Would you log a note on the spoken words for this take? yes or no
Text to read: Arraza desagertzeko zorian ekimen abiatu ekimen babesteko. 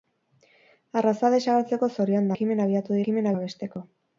no